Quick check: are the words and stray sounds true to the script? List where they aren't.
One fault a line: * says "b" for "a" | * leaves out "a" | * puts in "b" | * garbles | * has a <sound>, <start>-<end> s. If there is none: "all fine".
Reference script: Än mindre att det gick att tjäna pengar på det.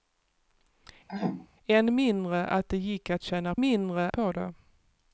* has a throat clearing, 1.1-1.5 s
* says "mindre" for "pengar"